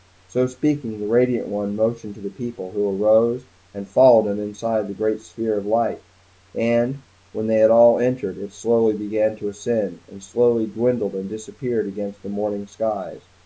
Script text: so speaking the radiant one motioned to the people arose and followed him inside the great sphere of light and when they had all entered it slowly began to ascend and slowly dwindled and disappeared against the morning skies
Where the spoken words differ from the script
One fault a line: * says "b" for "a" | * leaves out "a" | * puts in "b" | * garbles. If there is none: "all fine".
* puts in "who"